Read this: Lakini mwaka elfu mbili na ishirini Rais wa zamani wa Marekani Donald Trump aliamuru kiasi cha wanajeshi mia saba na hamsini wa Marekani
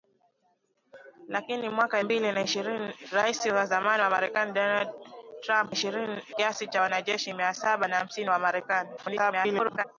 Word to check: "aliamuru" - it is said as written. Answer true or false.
false